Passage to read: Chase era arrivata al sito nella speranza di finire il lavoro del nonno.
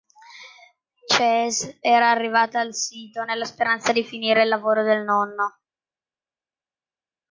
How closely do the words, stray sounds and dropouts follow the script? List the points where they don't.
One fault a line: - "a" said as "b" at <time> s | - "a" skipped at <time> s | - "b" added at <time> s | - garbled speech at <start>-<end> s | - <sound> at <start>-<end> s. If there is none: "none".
none